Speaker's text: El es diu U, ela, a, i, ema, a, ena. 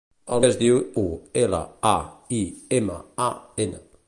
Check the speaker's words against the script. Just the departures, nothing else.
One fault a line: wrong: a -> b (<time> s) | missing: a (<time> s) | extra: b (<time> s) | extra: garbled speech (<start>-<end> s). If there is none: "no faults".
no faults